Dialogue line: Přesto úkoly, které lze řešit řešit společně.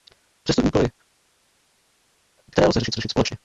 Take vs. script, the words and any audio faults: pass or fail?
pass